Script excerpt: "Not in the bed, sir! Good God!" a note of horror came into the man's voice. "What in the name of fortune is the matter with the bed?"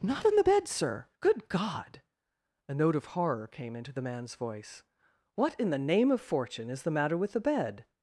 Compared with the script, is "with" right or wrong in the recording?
right